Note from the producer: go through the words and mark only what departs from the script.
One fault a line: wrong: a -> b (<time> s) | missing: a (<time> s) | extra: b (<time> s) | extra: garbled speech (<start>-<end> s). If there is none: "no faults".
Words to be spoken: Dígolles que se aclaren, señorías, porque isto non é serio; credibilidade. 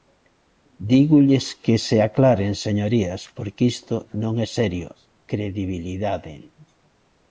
no faults